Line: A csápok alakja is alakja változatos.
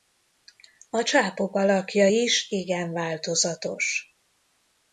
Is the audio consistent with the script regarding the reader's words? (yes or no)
no